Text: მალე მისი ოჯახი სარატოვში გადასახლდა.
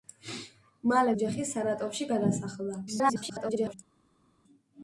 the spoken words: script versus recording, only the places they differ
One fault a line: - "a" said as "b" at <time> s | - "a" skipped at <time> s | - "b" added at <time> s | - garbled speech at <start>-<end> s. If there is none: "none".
- "მისი" skipped at 1.1 s
- garbled speech at 2.9-3.7 s